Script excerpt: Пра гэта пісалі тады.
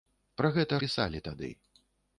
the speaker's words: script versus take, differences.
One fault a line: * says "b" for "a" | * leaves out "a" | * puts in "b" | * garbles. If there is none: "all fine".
all fine